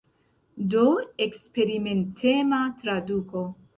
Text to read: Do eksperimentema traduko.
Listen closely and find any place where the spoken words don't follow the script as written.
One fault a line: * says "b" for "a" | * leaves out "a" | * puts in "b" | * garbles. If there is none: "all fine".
all fine